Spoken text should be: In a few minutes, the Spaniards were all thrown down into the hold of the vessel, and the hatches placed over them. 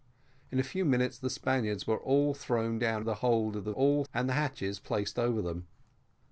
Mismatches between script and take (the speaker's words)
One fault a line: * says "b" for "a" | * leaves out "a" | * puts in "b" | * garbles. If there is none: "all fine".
* leaves out "into"
* says "all" for "vessel"